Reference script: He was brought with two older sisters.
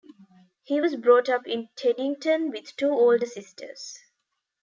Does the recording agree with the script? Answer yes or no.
no